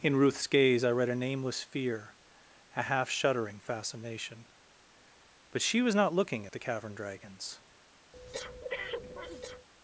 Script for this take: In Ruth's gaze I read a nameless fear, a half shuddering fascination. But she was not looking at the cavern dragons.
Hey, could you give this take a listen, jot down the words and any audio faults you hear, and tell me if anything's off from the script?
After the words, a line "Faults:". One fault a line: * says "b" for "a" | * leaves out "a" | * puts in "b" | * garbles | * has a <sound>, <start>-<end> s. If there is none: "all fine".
In Ruth's gaze I read a nameless fear, a half shuddering fascination. But she was not looking at the cavern dragons.
Faults:
* has a breath, 8.1-9.7 s